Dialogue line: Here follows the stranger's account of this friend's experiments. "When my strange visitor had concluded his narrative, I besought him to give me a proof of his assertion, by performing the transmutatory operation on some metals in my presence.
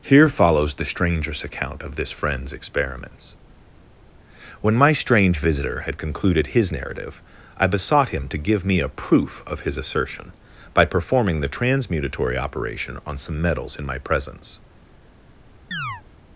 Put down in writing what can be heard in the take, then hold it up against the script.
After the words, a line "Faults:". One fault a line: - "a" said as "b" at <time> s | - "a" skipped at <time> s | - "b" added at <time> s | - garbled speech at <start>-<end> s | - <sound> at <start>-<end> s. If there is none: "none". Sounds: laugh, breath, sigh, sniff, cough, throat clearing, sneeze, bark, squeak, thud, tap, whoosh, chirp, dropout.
Here follows the stranger's account of this friend's experiments. "When my strange visitor had concluded his narrative, I besought him to give me a proof of his assertion, by performing the transmutatory operation on some metals in my presence.
Faults:
- chirp at 15.7-16.0 s